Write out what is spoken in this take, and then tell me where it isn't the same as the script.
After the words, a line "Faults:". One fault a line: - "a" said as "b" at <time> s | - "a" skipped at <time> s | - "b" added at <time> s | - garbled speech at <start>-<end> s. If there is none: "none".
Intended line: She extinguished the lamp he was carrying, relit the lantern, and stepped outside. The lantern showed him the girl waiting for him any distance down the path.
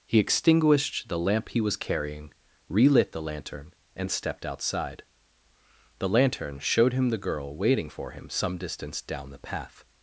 He extinguished the lamp he was carrying, relit the lantern, and stepped outside. The lantern showed him the girl waiting for him some distance down the path.
Faults:
- "She" said as "He" at 0.1 s
- "any" said as "some" at 8.3 s